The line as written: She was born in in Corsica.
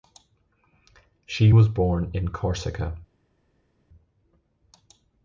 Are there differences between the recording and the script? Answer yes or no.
yes